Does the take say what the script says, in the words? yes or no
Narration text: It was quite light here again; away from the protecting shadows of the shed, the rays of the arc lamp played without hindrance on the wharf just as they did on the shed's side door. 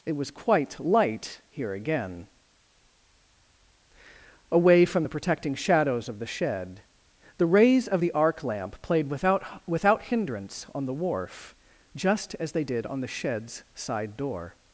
no